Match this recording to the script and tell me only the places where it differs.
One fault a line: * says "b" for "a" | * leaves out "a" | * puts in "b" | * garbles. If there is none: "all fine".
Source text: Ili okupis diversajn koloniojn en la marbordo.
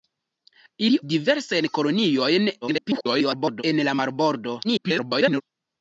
* leaves out "okupis"
* garbles
* garbles